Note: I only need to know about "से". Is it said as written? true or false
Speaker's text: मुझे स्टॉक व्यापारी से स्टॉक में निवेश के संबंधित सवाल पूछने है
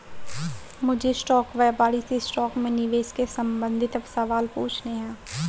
true